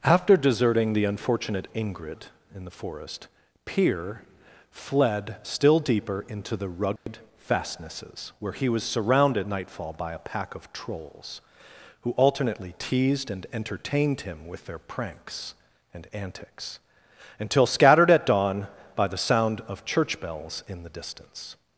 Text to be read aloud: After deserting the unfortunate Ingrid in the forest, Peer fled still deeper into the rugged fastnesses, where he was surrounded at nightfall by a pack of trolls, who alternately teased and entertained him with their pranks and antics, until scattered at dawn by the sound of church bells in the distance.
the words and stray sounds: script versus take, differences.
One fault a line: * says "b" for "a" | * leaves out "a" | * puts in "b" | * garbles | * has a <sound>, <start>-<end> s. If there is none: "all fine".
* has a dropout, 7.0-7.1 s
* leaves out "at"